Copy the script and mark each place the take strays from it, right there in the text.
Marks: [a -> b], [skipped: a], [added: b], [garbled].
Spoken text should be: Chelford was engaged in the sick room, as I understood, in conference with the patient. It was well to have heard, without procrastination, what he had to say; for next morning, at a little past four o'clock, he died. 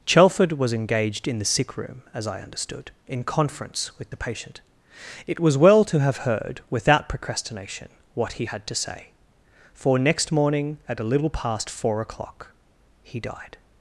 Chelford was engaged in the sick room, as I understood, in conference with the patient. It was well to have heard, without procrastination, what he had to say; for next morning, at a little past four o'clock, he died.